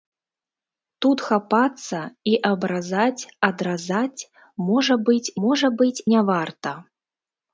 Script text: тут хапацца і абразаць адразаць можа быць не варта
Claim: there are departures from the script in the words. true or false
true